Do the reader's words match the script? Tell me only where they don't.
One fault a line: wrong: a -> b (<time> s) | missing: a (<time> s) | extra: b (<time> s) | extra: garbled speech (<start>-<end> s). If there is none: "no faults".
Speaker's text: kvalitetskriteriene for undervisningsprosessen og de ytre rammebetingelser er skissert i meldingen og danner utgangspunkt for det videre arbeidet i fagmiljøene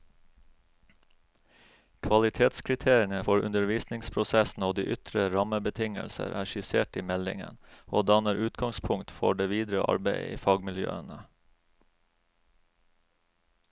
no faults